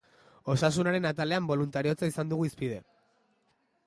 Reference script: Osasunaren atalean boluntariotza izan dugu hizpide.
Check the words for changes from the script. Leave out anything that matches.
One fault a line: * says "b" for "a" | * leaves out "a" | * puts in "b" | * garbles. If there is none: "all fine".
all fine